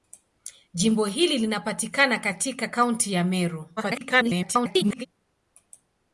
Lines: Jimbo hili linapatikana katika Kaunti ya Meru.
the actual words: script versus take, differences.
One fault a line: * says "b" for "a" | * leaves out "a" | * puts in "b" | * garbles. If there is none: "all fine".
* garbles